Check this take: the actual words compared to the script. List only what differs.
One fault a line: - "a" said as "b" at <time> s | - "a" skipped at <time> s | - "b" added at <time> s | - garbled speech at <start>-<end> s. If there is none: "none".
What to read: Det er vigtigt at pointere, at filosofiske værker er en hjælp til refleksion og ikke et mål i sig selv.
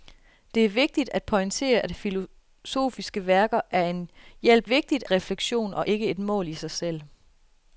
- "til" said as "vigtigt" at 4.6 s